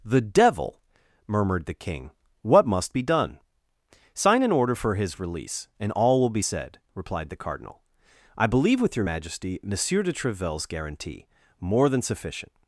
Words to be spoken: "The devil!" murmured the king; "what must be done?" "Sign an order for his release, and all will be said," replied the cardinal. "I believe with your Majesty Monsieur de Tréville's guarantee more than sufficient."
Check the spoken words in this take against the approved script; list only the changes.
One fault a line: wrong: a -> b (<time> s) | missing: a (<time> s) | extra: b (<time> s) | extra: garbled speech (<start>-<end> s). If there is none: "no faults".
no faults